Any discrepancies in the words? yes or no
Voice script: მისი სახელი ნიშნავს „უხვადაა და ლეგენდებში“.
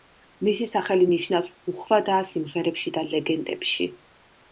yes